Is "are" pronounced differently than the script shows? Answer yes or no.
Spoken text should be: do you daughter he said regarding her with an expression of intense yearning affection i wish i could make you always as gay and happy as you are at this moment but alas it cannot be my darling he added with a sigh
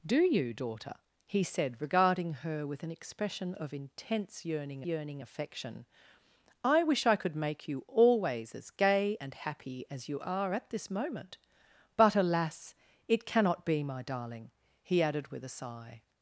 no